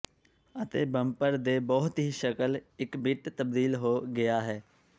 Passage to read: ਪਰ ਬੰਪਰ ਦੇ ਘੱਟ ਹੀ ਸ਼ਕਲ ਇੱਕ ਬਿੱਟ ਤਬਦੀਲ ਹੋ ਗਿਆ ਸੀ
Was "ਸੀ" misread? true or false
true